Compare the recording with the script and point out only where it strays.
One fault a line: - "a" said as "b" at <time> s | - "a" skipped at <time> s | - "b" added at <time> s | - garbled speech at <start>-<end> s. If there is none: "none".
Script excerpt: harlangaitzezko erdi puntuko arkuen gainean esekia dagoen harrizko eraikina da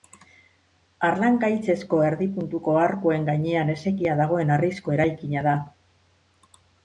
none